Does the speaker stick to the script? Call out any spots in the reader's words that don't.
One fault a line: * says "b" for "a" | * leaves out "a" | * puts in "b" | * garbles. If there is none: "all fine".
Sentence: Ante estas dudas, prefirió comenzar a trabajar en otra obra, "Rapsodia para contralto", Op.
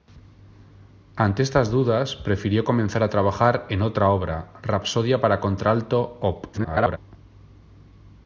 * garbles